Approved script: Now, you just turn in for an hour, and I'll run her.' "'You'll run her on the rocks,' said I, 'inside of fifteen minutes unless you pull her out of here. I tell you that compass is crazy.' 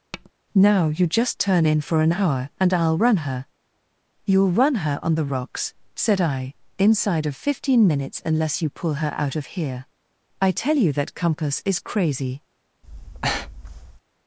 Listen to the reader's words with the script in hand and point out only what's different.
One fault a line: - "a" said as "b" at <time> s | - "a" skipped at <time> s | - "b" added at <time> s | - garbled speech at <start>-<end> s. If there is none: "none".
none